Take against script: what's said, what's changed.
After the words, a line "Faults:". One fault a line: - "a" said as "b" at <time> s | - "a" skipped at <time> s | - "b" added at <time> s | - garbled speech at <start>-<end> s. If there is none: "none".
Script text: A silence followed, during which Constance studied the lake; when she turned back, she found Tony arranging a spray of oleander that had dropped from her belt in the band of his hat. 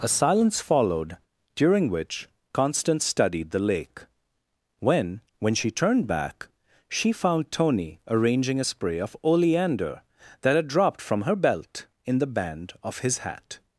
A silence followed, during which Constance studied the lake; when when she turned back, she found Tony arranging a spray of oleander that had dropped from her belt in the band of his hat.
Faults:
- "when" added at 5.4 s